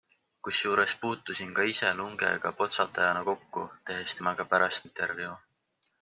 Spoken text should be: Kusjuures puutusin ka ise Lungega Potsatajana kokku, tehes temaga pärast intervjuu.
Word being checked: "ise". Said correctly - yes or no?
yes